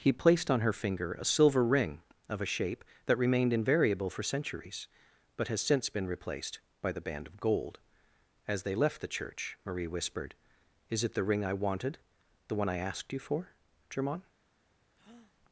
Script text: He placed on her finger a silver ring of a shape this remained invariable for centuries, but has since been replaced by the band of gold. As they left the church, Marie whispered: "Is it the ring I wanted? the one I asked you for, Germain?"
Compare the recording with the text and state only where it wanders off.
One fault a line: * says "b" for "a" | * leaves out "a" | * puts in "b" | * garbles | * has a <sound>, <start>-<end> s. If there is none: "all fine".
* says "that" for "this"
* has a breath, 15.0-15.3 s